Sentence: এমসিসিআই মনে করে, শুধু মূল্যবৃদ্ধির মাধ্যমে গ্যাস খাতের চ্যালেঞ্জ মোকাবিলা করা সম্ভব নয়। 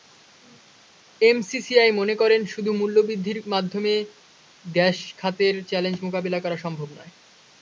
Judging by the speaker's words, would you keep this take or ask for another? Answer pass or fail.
pass